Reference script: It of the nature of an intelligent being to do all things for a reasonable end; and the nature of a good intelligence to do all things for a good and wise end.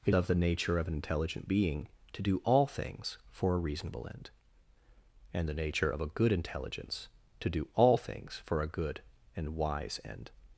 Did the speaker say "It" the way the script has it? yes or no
yes